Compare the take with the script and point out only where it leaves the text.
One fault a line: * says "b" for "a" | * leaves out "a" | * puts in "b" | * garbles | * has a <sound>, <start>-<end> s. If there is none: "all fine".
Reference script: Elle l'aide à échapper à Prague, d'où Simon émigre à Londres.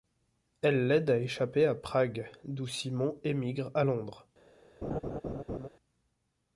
* has a laugh, 4.8-5.7 s